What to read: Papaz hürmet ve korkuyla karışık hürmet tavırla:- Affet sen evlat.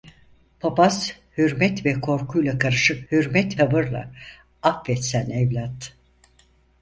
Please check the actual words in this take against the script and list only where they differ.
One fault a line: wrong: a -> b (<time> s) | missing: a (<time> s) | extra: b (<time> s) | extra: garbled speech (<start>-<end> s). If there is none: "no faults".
no faults